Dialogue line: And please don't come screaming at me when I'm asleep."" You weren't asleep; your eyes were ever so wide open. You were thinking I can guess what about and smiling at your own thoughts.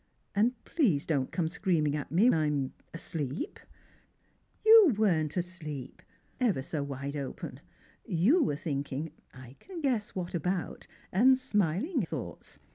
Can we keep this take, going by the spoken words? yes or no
no